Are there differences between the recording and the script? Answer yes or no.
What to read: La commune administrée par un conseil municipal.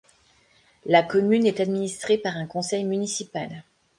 yes